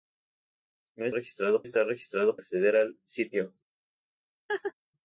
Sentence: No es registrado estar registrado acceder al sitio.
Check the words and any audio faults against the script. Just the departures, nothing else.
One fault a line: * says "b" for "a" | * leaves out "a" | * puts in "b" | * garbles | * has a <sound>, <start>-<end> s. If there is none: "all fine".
* has a laugh, 4.5-4.7 s